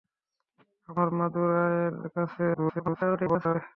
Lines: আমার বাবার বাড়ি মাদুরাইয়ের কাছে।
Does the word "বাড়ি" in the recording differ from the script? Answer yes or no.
yes